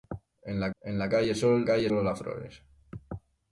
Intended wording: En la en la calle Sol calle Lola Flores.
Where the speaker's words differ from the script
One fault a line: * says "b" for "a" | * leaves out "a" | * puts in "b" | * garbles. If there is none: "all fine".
all fine